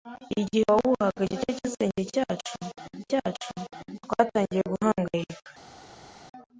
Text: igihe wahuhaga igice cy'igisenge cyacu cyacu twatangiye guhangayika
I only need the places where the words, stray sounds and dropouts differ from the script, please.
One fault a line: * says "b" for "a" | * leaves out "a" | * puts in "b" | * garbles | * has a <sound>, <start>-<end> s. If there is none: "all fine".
all fine